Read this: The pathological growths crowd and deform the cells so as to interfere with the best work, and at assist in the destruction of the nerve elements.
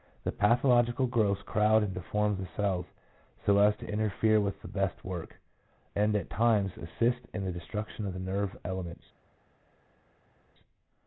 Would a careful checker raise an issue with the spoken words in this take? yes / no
yes